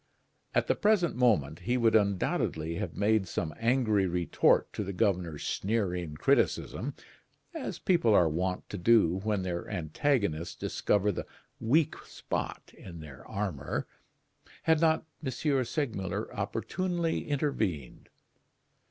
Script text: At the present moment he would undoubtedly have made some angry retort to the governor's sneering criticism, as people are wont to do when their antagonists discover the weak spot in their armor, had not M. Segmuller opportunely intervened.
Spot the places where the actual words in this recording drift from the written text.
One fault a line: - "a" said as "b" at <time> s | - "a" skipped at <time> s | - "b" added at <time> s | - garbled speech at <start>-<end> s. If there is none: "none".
none